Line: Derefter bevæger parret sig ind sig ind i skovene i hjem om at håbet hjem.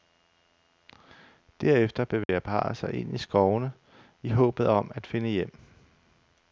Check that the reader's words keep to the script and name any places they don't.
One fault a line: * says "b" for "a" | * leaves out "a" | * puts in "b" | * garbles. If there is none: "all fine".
* leaves out "sig ind"
* says "håbet" for "hjem"
* says "finde" for "håbet"